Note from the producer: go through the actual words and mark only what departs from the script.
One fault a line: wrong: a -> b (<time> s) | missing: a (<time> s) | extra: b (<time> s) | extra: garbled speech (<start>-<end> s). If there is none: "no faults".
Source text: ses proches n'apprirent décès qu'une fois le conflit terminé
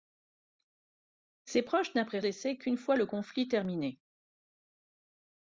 no faults